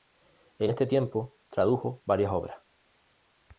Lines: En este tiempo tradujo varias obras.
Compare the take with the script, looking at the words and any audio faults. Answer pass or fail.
pass